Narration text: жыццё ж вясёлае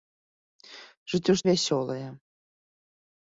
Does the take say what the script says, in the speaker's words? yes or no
yes